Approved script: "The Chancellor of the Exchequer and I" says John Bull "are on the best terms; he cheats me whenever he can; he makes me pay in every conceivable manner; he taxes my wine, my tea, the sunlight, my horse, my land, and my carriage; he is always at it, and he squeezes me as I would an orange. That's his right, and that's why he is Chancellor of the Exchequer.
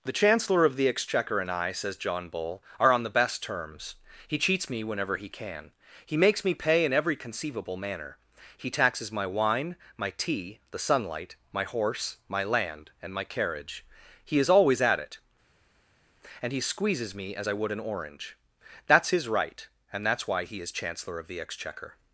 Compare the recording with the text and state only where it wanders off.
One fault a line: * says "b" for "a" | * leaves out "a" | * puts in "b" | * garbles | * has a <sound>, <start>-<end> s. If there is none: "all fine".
all fine